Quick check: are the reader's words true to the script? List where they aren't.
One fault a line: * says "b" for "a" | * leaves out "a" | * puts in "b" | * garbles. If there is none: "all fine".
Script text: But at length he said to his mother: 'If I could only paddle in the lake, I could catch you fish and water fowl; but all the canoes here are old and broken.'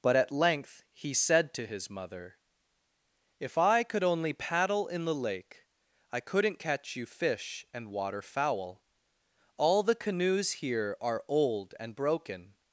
* says "couldn't" for "could"
* leaves out "but"